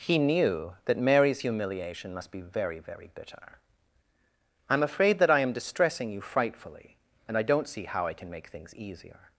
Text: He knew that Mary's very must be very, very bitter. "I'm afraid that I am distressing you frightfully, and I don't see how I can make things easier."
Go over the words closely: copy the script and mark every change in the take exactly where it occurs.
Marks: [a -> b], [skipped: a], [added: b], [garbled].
He knew that Mary's [very -> humiliation] must be very, very bitter. "I'm afraid that I am distressing you frightfully, and I don't see how I can make things easier."